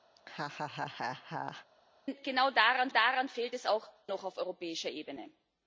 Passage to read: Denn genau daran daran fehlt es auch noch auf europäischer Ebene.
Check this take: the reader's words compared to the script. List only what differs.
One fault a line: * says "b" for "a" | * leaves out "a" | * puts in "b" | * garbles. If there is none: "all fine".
all fine